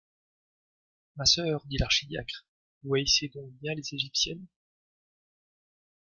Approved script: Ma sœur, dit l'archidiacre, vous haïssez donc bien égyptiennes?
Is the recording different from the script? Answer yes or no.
yes